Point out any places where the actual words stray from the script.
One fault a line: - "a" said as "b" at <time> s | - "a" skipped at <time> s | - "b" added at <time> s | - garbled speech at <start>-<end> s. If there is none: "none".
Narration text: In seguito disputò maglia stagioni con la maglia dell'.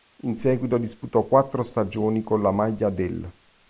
- "maglia" said as "quattro" at 1.3 s